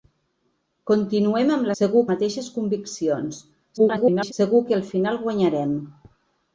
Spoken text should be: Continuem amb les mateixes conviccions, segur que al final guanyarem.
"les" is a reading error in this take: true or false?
true